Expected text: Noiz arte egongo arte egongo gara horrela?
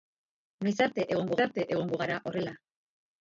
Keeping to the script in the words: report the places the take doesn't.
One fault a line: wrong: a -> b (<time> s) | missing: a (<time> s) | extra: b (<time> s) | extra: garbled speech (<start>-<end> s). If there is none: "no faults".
no faults